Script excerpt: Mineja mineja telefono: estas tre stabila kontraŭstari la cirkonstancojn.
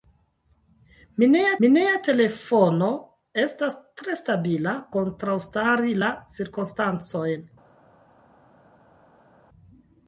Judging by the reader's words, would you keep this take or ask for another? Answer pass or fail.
pass